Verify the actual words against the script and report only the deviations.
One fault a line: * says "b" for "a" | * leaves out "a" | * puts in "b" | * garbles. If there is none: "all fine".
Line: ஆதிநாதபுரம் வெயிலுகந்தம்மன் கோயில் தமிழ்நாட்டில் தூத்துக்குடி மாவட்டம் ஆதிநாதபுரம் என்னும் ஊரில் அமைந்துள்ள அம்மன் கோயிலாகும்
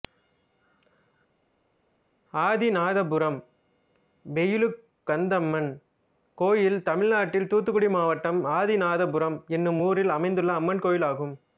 all fine